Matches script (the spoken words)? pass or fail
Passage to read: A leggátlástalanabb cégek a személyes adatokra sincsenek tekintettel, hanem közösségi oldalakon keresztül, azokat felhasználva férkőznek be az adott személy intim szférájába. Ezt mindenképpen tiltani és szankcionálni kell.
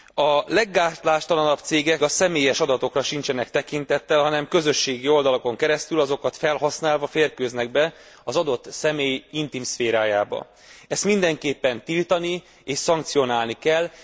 pass